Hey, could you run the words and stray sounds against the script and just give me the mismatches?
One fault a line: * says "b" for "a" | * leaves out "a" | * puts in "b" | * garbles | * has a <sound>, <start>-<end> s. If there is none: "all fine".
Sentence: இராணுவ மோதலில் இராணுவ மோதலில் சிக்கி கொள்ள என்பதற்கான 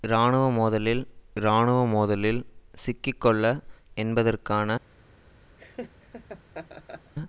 * has a laugh, 5.6-7.1 s